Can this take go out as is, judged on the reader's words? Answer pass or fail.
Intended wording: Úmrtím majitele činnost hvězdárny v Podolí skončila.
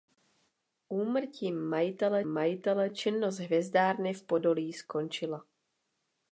fail